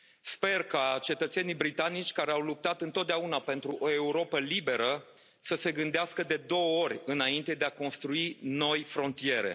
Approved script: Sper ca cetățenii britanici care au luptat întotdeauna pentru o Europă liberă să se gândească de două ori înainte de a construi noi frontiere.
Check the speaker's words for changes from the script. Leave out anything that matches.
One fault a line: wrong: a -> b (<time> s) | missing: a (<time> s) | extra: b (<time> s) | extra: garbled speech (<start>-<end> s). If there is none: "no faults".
no faults